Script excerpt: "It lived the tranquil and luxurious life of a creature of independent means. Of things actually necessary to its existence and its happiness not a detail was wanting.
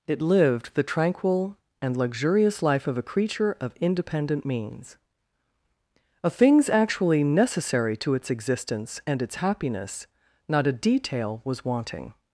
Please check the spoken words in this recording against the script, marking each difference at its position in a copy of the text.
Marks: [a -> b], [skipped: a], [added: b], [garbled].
"It lived the tranquil and luxurious life of a creature of independent means. Of things actually necessary to its existence and its happiness not a detail was wanting.